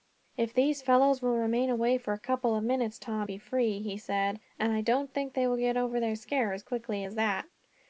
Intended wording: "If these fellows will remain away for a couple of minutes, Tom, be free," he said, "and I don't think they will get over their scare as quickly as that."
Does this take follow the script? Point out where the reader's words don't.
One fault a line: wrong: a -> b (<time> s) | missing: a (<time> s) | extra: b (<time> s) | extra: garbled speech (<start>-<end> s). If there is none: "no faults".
no faults